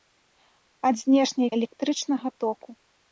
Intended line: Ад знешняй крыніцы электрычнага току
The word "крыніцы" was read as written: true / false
false